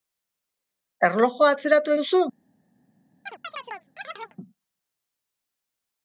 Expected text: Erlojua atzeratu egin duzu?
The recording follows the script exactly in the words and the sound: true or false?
false